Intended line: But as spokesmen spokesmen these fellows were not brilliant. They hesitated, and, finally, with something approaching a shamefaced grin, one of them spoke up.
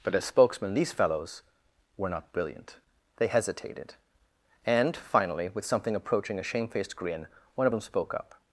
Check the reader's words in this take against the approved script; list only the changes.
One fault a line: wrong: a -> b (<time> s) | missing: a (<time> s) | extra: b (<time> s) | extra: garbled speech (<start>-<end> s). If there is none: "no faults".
missing: spokesmen (0.7 s)